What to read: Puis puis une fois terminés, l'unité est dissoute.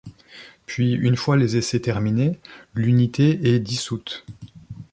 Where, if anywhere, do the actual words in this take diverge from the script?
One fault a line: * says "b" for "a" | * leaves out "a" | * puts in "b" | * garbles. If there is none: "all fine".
* leaves out "puis"
* puts in "les essais"